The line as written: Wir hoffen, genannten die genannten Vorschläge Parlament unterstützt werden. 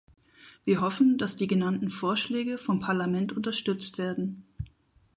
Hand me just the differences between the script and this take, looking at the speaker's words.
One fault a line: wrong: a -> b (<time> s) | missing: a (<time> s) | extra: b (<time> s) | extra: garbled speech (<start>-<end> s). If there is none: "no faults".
wrong: genannten -> dass (1.2 s)
extra: vom (2.6 s)